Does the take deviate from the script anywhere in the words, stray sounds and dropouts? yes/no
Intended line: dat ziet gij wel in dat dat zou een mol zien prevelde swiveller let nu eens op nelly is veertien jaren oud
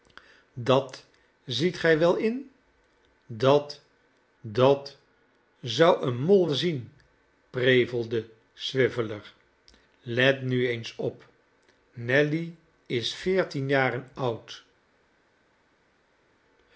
no